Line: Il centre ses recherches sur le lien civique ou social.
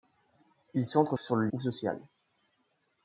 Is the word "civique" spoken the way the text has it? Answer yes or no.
no